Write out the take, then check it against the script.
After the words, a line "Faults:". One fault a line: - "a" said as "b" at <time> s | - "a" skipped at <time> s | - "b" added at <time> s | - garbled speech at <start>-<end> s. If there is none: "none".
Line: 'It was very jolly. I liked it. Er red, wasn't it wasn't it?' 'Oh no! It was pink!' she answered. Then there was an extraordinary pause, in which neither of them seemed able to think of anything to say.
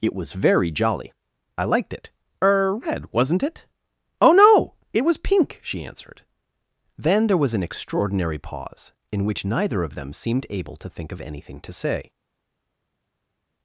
'It was very jolly. I liked it. Er red, wasn't it?' 'Oh no! It was pink!' she answered. Then there was an extraordinary pause, in which neither of them seemed able to think of anything to say.
Faults:
- "wasn't it" skipped at 3.6 s